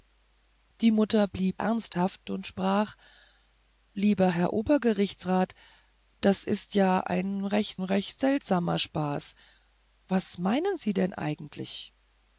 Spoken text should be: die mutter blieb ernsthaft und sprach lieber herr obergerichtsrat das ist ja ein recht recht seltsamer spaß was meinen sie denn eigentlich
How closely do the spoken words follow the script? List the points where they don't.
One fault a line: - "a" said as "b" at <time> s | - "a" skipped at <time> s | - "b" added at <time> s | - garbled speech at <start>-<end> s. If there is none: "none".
none